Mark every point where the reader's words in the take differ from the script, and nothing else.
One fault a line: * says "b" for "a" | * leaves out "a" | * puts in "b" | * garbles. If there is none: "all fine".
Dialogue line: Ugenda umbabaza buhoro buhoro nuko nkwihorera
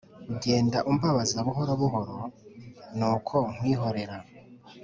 all fine